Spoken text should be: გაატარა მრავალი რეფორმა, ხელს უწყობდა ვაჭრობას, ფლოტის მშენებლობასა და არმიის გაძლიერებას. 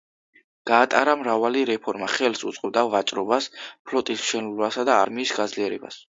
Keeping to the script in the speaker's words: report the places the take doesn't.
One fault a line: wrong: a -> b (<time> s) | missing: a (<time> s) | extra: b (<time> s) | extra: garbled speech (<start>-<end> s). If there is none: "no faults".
no faults